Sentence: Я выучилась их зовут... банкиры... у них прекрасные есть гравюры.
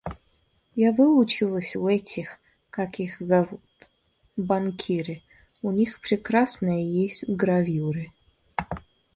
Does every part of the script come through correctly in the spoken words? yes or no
no